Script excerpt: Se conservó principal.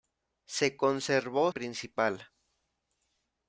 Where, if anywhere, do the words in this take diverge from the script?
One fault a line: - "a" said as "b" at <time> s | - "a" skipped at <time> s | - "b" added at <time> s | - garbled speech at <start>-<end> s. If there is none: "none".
none